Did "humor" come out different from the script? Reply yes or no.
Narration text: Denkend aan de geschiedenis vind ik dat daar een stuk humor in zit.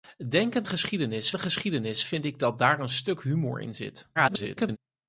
no